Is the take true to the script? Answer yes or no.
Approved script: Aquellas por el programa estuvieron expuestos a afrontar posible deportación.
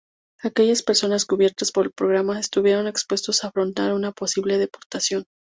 no